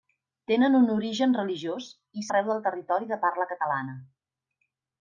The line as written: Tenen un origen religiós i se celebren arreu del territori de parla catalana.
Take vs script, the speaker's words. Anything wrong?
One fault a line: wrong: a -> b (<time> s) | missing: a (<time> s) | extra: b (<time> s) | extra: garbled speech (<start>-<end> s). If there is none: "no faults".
missing: se celebren (2.2 s)